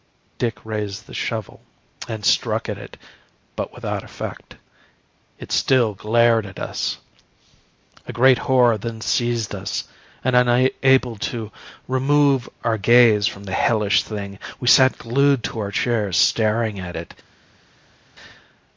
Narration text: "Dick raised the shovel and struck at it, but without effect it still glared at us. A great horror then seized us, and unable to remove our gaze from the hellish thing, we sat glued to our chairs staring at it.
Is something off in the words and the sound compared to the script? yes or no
no